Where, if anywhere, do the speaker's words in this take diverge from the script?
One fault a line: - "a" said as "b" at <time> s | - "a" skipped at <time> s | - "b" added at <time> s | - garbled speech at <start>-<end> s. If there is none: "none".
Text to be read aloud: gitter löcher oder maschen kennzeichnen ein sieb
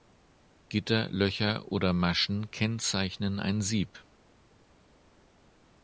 none